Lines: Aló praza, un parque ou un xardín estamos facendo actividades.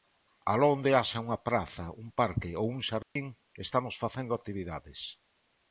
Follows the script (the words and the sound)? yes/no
no